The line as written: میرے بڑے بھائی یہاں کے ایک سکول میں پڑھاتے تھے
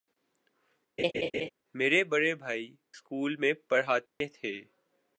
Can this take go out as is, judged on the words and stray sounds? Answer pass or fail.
fail